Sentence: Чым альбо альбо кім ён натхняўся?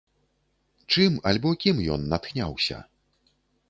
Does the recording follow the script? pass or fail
fail